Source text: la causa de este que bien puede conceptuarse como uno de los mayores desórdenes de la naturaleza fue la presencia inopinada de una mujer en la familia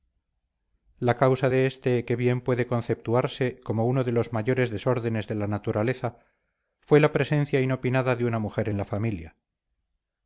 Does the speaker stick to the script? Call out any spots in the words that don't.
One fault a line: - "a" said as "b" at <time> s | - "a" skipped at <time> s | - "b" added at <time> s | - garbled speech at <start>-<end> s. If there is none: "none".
none